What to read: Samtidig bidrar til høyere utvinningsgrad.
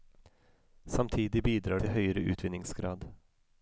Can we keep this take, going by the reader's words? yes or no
yes